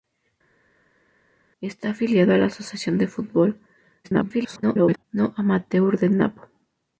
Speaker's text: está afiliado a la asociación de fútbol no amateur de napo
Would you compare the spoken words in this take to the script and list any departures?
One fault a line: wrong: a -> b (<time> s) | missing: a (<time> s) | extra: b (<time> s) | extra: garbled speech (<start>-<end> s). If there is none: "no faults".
extra: garbled speech (4.0-5.0 s)